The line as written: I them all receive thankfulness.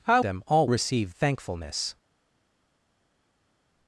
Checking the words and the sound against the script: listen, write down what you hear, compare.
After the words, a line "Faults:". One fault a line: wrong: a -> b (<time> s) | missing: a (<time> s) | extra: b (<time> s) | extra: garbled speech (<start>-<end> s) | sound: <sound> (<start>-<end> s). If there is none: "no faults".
I them all receive thankfulness.
Faults:
no faults